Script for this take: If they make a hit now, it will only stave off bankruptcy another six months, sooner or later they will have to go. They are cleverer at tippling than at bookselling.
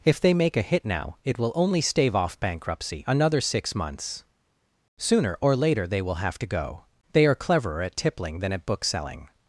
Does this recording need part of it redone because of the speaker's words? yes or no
no